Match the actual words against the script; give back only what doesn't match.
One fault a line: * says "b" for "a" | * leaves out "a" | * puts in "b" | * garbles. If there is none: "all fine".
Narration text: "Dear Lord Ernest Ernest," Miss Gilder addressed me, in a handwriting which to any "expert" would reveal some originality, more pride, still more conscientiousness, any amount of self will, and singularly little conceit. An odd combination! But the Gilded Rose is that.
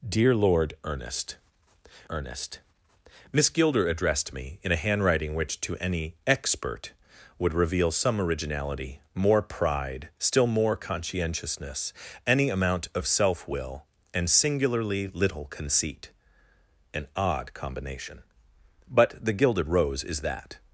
all fine